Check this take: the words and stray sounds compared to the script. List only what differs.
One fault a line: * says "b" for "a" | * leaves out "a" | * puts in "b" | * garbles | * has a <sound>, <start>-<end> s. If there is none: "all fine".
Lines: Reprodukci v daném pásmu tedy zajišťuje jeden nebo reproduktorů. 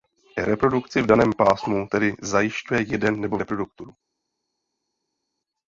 all fine